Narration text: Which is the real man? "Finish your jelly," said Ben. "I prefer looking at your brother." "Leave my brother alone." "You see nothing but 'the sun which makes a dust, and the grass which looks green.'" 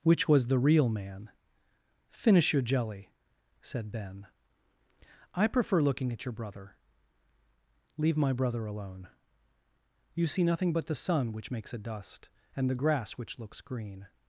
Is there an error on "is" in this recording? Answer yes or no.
yes